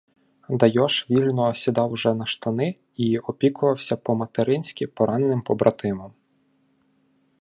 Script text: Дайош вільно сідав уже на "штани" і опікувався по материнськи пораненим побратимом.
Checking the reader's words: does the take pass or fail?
pass